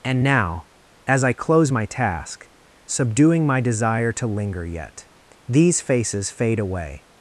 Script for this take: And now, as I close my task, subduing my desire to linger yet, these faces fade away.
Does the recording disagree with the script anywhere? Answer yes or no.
no